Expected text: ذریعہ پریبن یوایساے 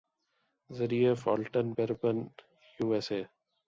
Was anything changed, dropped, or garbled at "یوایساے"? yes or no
no